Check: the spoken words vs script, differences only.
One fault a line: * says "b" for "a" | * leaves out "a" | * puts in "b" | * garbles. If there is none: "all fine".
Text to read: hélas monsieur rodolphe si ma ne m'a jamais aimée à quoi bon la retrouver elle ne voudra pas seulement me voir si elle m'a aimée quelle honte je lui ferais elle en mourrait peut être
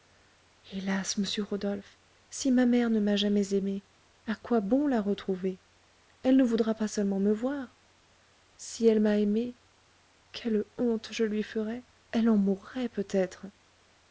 * puts in "mère"